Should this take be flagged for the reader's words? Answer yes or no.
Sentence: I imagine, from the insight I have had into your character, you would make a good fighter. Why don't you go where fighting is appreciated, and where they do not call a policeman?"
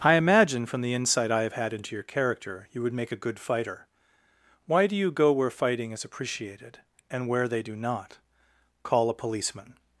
yes